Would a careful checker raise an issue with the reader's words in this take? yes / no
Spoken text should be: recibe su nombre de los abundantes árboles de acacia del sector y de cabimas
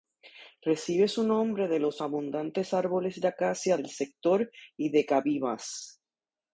no